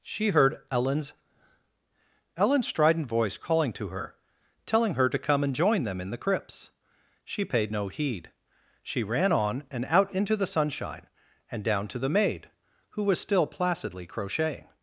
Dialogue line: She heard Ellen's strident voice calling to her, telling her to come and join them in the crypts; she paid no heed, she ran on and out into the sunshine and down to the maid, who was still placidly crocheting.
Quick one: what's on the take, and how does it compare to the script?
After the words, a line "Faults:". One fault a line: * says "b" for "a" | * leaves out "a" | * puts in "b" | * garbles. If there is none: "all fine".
She heard Ellen's Ellen's strident voice calling to her, telling her to come and join them in the crypts; she paid no heed, she ran on and out into the sunshine and down to the maid, who was still placidly crocheting.
Faults:
* puts in "Ellen's"